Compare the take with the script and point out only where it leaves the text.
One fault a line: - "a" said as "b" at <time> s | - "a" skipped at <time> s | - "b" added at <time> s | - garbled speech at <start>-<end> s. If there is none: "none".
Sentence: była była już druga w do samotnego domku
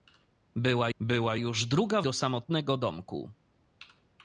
none